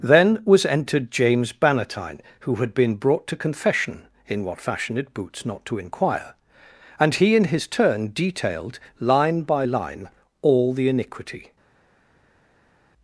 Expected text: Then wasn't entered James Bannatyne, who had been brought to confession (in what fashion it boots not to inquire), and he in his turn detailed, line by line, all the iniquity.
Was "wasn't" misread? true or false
true